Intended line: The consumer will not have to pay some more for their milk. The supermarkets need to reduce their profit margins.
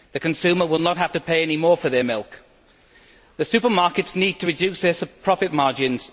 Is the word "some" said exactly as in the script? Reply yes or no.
no